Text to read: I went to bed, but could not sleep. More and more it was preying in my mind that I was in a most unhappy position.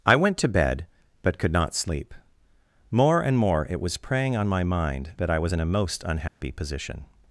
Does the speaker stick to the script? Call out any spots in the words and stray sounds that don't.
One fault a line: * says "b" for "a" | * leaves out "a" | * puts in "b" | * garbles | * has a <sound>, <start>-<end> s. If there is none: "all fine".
* says "on" for "in"
* has a dropout, 6.3-6.4 s